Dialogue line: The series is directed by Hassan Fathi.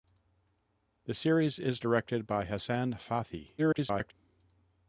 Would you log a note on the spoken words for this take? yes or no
yes